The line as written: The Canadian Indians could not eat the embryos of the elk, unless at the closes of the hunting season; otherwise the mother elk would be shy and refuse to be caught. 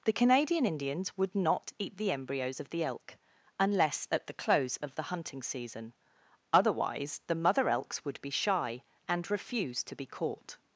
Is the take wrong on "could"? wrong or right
wrong